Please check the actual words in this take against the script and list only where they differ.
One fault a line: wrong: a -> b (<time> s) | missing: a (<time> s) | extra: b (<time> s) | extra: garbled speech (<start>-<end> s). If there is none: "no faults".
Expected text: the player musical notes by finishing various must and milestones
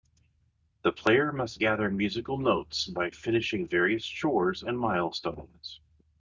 extra: must gather (1.3 s)
wrong: must -> chores (4.0 s)